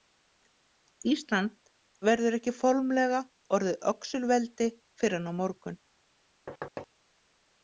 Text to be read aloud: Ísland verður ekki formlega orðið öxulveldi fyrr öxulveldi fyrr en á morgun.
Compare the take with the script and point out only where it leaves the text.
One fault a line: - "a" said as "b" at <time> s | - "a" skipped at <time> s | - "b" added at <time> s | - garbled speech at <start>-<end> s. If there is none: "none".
- "öxulveldi fyrr" skipped at 5.2 s